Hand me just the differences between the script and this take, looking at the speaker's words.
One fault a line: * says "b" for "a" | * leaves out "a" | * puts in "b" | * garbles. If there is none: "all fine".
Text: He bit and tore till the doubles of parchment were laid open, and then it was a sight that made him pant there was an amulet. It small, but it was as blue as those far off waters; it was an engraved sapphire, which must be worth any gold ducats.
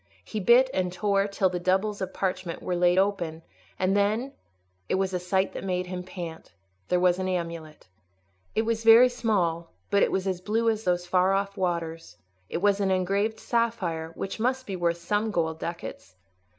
* puts in "was very"
* says "some" for "any"